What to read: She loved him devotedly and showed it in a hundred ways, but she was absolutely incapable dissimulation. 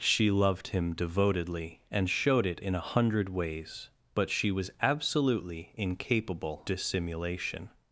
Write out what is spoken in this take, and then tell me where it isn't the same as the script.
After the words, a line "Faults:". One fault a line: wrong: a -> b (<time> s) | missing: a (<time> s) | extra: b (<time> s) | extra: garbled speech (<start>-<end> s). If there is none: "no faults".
She loved him devotedly and showed it in a hundred ways, but she was absolutely incapable dissimulation.
Faults:
no faults